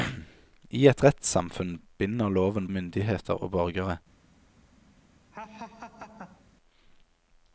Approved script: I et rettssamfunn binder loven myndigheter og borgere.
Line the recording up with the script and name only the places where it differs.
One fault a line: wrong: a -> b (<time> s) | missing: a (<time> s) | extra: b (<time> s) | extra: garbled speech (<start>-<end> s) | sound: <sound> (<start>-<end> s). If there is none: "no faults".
sound: laugh (5.3-6.4 s)